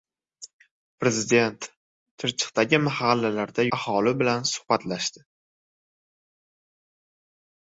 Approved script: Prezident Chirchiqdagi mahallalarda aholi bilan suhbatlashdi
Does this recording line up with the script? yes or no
yes